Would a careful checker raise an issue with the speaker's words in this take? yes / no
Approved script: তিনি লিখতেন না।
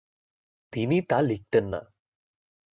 yes